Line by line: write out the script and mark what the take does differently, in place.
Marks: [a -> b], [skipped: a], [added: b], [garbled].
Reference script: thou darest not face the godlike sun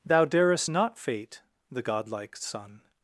thou darest not [face -> fate] the godlike sun